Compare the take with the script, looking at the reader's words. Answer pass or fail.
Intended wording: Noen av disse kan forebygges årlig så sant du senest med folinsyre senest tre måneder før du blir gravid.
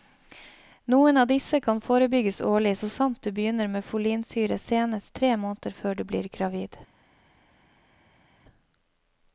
fail